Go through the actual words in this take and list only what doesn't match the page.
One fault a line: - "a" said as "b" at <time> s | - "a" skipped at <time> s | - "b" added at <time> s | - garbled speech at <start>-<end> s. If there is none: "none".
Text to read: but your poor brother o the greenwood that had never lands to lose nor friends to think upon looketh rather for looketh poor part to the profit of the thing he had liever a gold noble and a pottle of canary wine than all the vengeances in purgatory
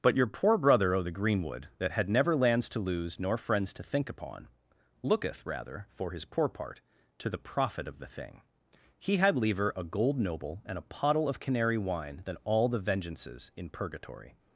- "looketh" said as "his" at 6.1 s